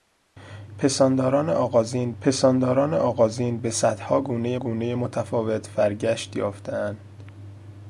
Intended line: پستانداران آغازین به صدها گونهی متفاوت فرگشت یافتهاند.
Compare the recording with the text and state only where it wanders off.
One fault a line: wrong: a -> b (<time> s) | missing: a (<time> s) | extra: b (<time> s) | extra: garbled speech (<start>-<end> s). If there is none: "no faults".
extra: پستانداران آغازین (2.2 s)
extra: گونهی (4.6 s)